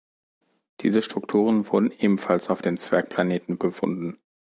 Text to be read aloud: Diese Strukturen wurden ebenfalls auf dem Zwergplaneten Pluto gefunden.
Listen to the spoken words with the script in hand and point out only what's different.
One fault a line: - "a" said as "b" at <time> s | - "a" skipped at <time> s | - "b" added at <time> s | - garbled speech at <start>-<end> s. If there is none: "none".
- "Pluto" skipped at 3.6 s